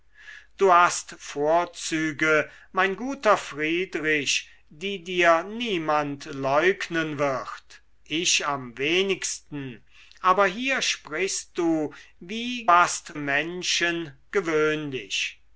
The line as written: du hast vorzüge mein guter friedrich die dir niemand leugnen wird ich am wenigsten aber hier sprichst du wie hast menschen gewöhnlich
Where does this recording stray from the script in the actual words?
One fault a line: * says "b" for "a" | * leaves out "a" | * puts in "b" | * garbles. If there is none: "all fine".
all fine